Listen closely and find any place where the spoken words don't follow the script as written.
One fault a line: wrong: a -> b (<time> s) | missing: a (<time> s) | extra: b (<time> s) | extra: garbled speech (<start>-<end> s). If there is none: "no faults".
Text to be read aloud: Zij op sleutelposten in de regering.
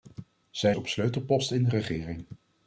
no faults